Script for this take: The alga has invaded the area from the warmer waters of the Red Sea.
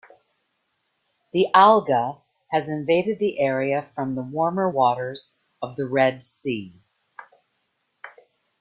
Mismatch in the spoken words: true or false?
false